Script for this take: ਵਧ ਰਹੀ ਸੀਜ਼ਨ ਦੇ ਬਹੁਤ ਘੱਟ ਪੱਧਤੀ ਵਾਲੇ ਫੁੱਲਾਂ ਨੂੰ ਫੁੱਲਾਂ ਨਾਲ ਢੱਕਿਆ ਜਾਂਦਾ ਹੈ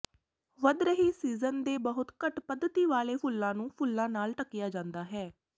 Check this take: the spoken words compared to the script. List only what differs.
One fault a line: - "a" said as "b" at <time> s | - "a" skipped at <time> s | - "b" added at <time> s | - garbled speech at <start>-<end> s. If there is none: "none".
none